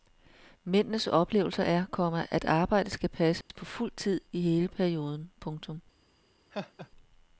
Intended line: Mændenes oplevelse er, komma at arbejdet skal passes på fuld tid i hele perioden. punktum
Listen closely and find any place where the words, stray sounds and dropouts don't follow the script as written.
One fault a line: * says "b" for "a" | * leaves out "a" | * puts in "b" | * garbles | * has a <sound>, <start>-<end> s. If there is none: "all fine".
* has a dropout, 3.4-3.5 s
* has a laugh, 6.5-6.9 s